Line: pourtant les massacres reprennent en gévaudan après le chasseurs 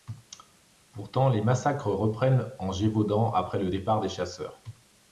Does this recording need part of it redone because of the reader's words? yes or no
yes